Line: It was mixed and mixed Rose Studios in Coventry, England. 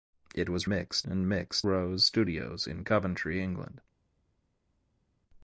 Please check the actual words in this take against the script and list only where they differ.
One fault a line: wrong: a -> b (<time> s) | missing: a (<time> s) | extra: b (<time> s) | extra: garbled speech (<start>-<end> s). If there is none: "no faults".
no faults